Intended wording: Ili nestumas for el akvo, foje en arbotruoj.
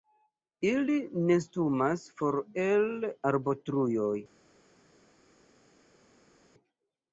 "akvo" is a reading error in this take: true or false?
true